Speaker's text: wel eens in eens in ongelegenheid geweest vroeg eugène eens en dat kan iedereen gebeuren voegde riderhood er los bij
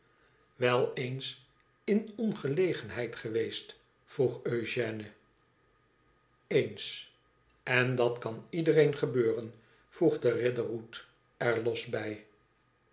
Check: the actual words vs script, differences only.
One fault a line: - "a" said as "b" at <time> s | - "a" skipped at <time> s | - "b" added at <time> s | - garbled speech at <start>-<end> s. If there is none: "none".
- "eens in" skipped at 2.1 s